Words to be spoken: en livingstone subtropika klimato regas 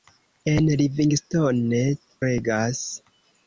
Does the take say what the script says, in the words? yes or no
no